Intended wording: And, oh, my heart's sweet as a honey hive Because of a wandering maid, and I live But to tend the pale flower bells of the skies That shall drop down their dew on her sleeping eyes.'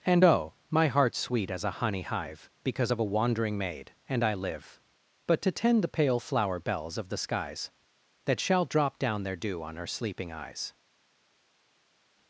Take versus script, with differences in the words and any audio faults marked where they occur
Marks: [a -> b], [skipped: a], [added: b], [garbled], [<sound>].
And, oh, my heart's sweet as a honey hive Because of a wandering maid, and I live But to tend the pale flower bells of the skies That shall drop down their dew on her sleeping eyes.'